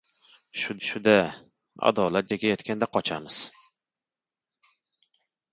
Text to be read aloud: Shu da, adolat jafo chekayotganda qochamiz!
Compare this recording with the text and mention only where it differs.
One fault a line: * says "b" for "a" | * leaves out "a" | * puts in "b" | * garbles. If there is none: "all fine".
* puts in "shu"
* leaves out "jafo"